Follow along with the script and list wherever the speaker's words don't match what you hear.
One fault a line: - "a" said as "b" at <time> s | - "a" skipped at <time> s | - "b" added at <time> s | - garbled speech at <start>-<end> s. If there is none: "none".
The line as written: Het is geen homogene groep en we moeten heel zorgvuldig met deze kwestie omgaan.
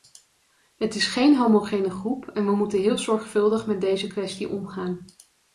none